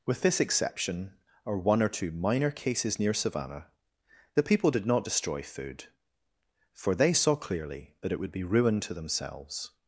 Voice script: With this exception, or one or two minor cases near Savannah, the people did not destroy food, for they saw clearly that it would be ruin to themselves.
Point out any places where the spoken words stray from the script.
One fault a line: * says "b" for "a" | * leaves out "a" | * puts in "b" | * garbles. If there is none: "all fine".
all fine